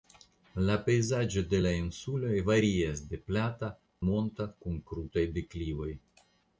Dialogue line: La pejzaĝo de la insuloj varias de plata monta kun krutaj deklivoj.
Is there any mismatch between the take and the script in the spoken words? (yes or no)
no